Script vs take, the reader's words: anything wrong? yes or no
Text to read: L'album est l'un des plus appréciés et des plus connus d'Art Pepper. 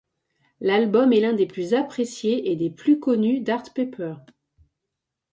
no